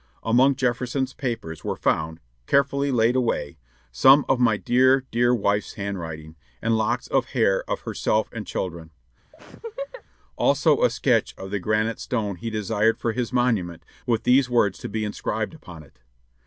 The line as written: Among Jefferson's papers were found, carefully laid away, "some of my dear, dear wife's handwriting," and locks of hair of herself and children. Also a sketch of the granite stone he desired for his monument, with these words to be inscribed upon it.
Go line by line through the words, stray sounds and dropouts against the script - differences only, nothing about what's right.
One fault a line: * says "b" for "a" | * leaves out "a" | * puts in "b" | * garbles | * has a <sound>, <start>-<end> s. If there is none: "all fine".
* has a laugh, 9.3-10.0 s